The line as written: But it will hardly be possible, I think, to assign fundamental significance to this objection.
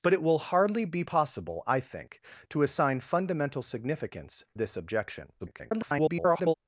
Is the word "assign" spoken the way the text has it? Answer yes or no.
yes